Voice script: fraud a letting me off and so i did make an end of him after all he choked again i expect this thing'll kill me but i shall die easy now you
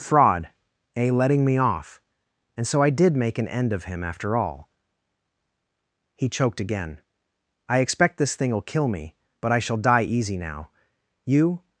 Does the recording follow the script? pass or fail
pass